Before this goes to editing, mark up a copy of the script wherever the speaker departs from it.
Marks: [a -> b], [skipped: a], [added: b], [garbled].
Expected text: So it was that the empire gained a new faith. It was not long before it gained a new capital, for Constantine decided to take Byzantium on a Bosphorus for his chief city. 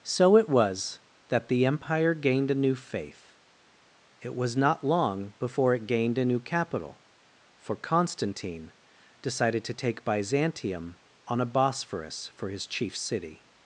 So it was that the empire gained a new faith. It was not long before it gained a new capital, for Constantine decided to take Byzantium on a Bosphorus for his chief city.